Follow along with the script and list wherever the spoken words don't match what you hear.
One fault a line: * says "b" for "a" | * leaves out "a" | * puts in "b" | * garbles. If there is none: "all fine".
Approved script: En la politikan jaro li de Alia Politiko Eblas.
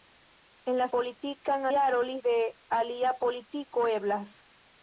all fine